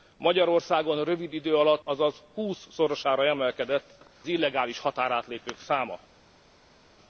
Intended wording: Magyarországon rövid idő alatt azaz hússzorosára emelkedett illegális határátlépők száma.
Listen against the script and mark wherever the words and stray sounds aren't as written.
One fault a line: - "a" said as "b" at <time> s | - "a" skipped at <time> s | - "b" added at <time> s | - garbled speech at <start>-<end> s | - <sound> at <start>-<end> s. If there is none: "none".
none